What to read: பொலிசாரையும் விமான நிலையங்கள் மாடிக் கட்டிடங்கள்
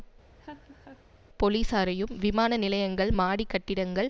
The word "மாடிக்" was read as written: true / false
true